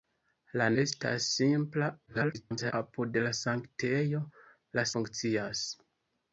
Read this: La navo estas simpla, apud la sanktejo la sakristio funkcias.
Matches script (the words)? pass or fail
fail